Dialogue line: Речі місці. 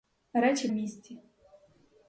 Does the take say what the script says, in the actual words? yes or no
yes